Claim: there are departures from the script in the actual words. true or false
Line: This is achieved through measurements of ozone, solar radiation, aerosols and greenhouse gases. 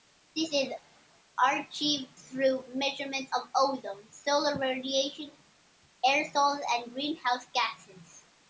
false